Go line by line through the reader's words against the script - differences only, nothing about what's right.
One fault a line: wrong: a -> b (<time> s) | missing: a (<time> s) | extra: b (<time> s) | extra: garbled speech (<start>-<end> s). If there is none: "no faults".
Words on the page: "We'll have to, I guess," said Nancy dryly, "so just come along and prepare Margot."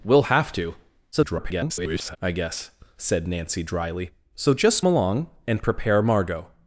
extra: garbled speech (1.1-2.2 s)
missing: come (4.9 s)